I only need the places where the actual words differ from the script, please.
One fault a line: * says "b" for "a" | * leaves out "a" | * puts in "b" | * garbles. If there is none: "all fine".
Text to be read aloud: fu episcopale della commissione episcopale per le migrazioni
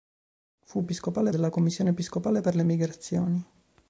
all fine